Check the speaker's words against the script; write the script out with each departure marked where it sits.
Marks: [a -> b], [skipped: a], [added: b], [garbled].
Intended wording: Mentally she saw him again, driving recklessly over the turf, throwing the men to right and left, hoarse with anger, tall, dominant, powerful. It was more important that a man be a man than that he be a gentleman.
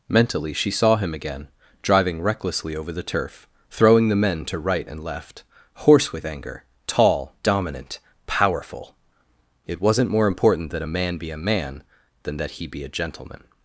Mentally she saw him again, driving recklessly over the turf, throwing the men to right and left, hoarse with anger, tall, dominant, powerful. It [was -> wasn't] more important that a man be a man than that he be a gentleman.